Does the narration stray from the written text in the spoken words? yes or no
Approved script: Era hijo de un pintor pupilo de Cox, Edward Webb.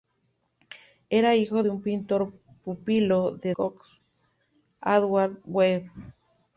no